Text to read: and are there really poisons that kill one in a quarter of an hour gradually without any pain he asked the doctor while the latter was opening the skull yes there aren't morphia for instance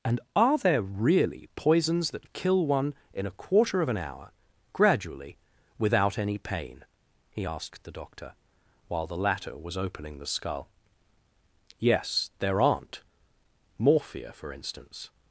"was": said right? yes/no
yes